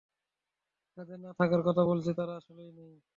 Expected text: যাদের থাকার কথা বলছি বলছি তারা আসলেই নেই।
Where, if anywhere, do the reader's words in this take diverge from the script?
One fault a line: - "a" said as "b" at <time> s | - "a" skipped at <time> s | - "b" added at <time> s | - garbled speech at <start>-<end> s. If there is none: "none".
- "না" added at 1.2 s
- "বলছি" skipped at 2.1 s